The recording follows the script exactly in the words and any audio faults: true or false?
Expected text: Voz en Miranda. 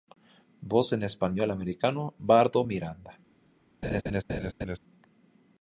false